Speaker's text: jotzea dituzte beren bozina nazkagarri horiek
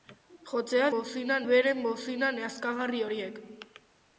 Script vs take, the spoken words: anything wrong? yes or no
yes